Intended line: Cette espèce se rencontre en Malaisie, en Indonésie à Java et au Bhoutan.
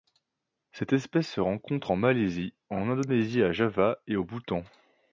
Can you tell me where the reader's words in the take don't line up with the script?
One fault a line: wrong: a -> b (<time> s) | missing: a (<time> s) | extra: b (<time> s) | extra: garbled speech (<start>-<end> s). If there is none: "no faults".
no faults